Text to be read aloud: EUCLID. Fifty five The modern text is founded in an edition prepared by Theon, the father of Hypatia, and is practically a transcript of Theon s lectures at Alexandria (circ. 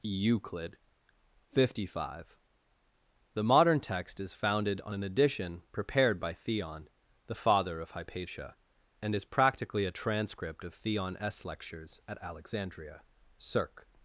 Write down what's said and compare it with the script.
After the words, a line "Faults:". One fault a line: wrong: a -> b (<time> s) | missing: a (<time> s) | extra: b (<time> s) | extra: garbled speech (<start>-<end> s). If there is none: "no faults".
EUCLID. Fifty five The modern text is founded on an edition prepared by Theon, the father of Hypatia, and is practically a transcript of Theon s lectures at Alexandria (circ.
Faults:
wrong: in -> on (4.8 s)